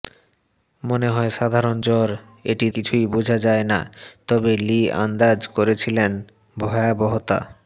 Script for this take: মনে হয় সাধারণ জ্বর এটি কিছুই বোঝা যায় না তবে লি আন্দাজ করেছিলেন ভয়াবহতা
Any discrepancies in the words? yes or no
no